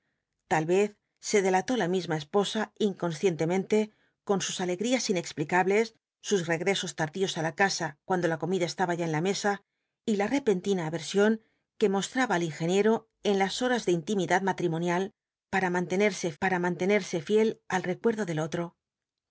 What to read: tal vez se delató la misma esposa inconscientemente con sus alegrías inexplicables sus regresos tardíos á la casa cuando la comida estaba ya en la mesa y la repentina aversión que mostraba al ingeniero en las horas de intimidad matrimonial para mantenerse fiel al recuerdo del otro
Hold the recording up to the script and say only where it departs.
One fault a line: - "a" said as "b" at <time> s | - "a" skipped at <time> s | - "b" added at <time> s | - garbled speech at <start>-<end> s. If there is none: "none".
- "para mantenerse" added at 16.4 s